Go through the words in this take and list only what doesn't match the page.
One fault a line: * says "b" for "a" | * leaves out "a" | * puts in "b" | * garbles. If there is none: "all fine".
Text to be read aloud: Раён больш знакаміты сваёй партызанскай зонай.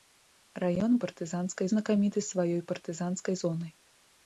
* says "партызанскай" for "больш"